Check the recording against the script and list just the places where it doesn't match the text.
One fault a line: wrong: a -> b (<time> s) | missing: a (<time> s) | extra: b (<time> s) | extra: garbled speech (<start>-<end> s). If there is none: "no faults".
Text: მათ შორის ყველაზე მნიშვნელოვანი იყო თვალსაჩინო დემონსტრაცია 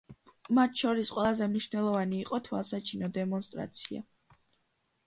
no faults